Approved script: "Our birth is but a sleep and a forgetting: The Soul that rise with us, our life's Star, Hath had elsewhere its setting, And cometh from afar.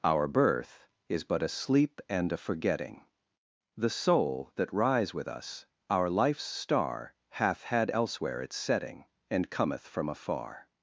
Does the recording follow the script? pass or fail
pass